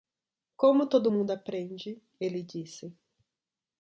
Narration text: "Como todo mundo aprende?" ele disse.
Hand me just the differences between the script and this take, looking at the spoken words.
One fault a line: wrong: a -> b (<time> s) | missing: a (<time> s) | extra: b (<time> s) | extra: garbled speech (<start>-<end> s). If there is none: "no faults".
no faults